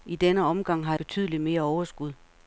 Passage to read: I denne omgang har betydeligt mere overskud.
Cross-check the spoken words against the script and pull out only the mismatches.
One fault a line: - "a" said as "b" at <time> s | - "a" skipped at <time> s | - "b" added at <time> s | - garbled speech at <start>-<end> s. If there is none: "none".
none